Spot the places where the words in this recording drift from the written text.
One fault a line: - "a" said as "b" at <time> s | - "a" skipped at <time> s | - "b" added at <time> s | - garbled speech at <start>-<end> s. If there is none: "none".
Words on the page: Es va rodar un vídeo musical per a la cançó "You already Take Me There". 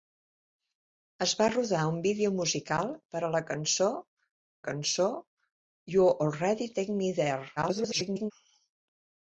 - "cançó" added at 4.7 s
- garbled speech at 7.6-8.3 s